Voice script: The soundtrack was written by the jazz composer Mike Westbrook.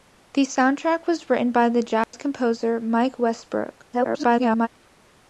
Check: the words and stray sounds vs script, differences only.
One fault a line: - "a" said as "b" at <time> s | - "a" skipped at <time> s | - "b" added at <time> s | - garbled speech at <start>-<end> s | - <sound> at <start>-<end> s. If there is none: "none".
- dropout at 2.0-2.1 s
- garbled speech at 3.9-4.7 s